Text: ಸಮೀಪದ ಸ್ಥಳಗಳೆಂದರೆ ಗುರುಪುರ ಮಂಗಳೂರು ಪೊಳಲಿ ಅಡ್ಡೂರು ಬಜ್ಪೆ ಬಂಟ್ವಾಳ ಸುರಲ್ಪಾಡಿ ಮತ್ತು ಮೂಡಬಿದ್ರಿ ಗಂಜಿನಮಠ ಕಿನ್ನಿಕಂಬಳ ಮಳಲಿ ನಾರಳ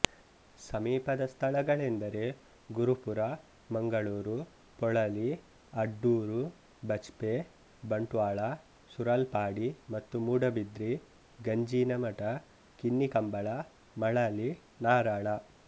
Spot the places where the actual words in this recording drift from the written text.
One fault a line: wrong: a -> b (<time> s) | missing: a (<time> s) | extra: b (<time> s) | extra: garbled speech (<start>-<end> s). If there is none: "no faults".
no faults